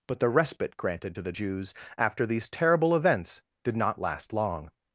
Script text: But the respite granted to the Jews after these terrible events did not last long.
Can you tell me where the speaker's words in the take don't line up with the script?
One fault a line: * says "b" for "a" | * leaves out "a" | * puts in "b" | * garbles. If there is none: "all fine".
all fine